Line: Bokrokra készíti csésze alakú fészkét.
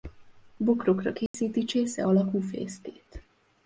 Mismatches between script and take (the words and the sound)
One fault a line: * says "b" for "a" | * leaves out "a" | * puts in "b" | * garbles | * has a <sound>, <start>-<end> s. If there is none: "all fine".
* has a dropout, 1.3-1.3 s